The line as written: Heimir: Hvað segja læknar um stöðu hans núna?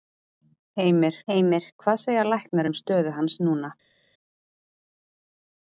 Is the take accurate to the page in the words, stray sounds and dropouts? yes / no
no